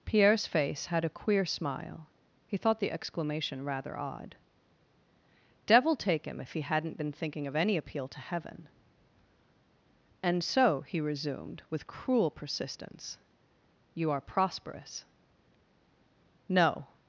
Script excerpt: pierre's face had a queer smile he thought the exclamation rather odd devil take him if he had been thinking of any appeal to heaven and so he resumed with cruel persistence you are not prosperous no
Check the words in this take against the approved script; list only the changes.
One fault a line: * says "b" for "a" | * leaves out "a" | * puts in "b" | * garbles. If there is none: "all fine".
* says "hadn't" for "had"
* leaves out "not"